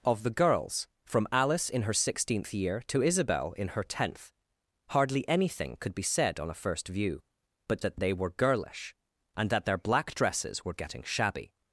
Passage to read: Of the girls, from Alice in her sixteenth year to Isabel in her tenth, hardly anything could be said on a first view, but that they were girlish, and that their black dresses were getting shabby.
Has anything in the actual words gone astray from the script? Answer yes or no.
no